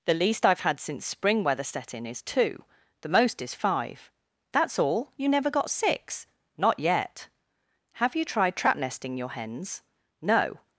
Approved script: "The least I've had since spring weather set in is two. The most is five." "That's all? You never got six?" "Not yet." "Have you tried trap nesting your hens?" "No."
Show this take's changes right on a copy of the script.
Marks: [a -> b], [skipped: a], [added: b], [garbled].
"The least I've had since spring weather set in is two. The most is five." "That's all? You never got six?" "Not yet." "Have you tried trap nesting your hens?" "No."